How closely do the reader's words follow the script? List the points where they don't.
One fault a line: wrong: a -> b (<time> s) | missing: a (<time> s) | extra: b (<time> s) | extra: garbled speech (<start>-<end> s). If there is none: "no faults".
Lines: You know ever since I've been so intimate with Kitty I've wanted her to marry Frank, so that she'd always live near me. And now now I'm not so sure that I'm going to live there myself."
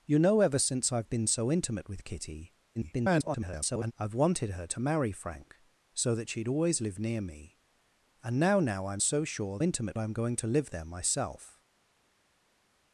extra: garbled speech (2.7-3.9 s)
missing: not (9.0 s)
wrong: that -> intimate (9.6 s)